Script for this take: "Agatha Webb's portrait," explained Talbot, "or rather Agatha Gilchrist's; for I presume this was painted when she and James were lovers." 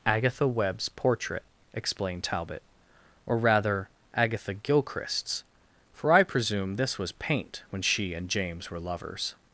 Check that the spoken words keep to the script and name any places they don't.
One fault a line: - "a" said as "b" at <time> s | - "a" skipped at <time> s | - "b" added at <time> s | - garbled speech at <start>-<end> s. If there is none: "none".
- "painted" said as "paint" at 7.1 s